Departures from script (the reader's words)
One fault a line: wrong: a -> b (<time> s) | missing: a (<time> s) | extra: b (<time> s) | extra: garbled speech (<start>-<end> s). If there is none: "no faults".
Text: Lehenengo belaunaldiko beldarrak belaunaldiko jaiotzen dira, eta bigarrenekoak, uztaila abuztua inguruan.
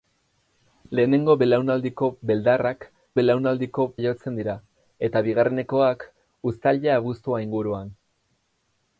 no faults